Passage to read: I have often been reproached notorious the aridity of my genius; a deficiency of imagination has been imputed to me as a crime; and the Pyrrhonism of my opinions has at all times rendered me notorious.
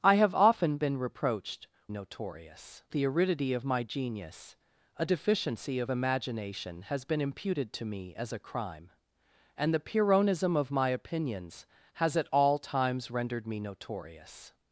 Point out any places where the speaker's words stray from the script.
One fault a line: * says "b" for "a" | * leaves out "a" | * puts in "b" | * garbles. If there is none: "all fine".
all fine